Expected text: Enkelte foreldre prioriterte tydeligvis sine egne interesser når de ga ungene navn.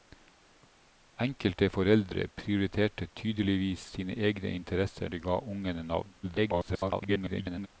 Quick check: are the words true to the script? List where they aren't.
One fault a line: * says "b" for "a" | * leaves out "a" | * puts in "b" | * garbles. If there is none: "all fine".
* leaves out "når"
* garbles